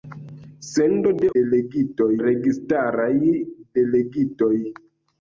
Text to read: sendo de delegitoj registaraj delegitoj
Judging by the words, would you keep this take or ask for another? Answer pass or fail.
pass